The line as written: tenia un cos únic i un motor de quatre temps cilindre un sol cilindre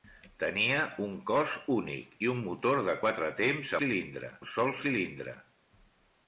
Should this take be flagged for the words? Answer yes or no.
no